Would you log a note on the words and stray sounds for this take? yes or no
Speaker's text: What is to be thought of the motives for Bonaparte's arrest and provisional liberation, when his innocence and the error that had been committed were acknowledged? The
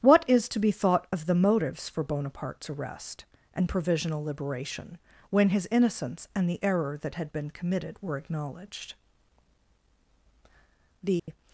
yes